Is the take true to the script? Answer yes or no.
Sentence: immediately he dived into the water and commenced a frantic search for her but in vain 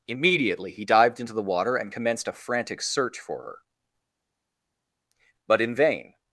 yes